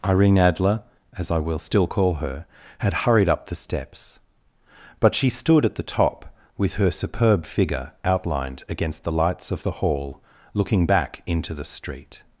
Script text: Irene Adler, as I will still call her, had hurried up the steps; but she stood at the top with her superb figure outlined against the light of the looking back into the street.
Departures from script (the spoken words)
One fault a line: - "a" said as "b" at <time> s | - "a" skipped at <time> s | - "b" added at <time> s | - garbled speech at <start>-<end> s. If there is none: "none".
- "light" said as "lights" at 9.1 s
- "hall" added at 9.7 s